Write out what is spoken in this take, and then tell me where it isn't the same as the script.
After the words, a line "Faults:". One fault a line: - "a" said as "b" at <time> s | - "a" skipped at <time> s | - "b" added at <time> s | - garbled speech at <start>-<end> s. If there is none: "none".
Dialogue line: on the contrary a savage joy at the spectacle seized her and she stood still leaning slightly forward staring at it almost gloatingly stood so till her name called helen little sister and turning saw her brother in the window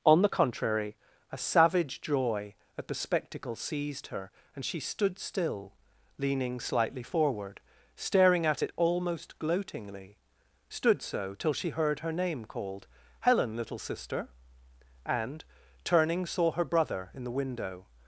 on the contrary a savage joy at the spectacle seized her and she stood still leaning slightly forward staring at it almost gloatingly stood so till she heard her name called helen little sister and turning saw her brother in the window
Faults:
- "she heard" added at 11.5 s